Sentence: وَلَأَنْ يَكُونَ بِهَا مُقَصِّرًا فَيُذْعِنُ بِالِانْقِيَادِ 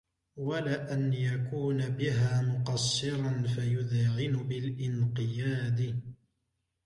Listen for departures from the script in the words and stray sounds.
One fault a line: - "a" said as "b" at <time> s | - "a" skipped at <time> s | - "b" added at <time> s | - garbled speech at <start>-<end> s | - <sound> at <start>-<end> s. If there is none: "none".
none